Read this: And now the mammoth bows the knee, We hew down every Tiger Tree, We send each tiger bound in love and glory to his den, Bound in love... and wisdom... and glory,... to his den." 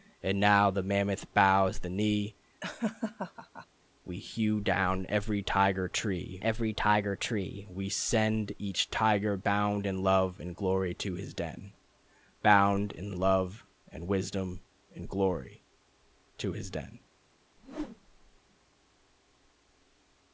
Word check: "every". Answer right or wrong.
right